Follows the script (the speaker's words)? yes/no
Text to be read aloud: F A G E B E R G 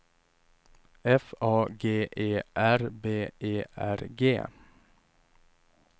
no